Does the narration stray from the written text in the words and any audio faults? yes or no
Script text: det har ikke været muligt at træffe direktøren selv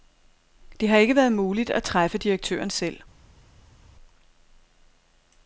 no